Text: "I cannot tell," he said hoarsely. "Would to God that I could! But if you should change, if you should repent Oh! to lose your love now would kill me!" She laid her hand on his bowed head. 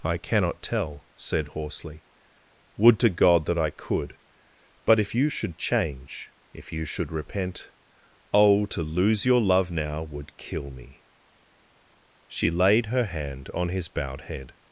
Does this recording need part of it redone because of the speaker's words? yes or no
yes